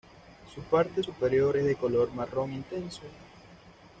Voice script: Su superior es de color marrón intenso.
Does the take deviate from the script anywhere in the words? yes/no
yes